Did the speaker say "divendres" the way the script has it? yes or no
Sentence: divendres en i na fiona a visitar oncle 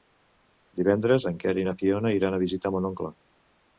yes